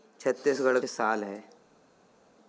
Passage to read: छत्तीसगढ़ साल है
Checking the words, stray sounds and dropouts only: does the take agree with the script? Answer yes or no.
yes